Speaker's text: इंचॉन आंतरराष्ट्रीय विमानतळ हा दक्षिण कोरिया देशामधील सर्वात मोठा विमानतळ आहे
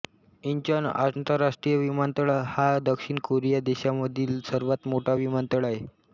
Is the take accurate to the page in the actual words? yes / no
yes